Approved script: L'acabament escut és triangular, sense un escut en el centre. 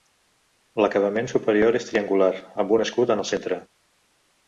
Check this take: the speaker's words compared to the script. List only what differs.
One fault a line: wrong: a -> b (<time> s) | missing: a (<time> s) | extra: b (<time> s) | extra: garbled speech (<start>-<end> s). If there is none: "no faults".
wrong: escut -> superior (1.4 s)
wrong: sense -> amb (2.6 s)